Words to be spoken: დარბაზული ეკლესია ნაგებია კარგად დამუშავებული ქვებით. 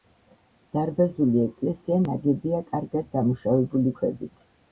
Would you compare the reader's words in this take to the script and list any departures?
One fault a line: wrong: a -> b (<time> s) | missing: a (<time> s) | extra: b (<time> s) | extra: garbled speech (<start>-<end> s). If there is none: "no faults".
no faults